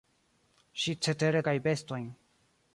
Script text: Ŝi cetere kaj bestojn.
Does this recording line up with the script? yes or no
yes